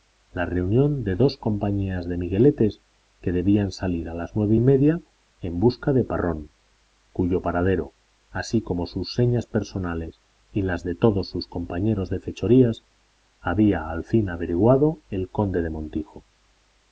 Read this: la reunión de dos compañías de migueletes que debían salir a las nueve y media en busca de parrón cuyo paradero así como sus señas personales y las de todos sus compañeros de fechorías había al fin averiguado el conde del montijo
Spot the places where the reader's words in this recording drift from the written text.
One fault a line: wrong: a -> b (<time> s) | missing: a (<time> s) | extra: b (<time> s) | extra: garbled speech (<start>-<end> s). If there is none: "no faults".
no faults